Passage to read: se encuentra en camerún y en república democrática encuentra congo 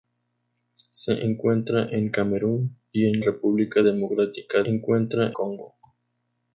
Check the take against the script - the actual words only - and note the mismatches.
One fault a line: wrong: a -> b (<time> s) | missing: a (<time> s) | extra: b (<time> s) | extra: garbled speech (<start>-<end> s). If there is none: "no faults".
no faults